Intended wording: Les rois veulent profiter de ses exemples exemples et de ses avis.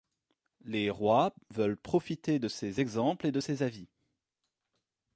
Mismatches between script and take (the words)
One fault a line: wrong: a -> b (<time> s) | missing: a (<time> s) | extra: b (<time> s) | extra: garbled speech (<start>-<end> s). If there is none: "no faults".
missing: exemples (3.3 s)